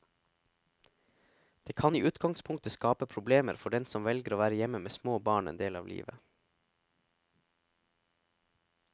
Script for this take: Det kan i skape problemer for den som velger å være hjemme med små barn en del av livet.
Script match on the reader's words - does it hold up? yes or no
no